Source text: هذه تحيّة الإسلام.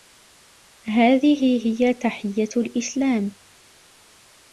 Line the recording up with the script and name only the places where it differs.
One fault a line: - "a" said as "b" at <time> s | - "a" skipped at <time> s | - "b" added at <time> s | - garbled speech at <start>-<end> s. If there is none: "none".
- "هي" added at 1.6 s